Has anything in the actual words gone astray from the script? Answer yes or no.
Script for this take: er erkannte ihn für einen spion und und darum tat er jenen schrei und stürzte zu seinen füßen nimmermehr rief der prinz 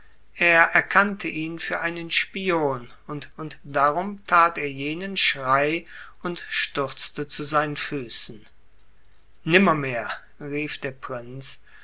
no